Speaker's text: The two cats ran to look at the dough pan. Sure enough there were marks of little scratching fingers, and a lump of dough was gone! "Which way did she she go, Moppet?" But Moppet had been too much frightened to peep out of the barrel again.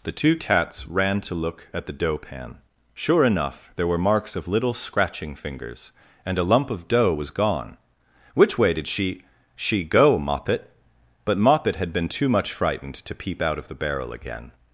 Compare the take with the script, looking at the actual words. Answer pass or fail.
pass